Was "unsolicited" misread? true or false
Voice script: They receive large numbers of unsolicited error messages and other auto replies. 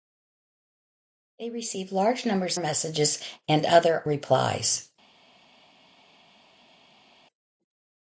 true